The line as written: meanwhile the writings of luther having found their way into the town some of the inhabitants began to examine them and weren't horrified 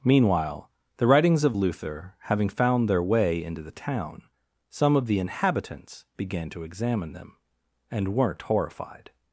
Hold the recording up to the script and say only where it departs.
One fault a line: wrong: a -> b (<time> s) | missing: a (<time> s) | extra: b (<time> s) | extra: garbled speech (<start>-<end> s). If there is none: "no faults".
no faults